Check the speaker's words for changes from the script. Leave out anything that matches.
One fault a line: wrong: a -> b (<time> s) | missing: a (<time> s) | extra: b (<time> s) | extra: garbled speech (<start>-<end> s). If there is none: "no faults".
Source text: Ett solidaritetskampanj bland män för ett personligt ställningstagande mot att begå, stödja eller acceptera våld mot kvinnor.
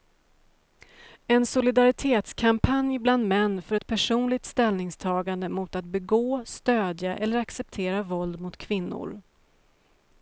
wrong: Ett -> En (1.3 s)